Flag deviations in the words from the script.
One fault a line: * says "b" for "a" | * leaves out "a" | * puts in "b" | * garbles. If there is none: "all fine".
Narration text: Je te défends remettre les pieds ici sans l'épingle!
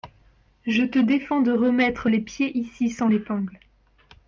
* puts in "de"